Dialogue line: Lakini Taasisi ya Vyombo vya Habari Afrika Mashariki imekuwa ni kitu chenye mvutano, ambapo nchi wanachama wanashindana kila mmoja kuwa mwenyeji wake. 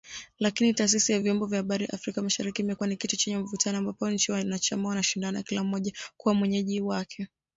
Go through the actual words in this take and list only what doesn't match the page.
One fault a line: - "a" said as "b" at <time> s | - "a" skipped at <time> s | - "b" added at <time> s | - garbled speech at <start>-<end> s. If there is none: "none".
none